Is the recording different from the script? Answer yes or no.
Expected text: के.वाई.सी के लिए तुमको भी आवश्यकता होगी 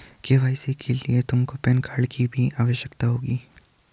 yes